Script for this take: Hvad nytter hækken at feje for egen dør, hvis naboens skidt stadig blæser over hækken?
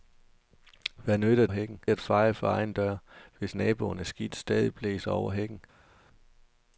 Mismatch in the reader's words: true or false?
false